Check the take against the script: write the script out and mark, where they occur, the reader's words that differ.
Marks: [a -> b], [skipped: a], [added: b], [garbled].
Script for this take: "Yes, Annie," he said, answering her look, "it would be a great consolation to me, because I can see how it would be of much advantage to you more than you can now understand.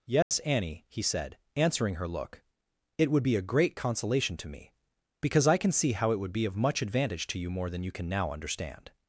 "Yes, Annie," he said, answering her look, "it would be a great consolation to me, because I can see how it would be of much advantage to you more than you can now understand.